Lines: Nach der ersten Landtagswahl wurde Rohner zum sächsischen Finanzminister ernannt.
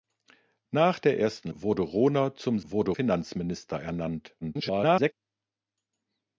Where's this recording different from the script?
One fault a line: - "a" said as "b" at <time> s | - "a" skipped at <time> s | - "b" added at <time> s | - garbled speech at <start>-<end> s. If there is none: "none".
- "Landtagswahl" skipped at 1.5 s
- "sächsischen" said as "wurde" at 2.6 s
- garbled speech at 4.4-5.1 s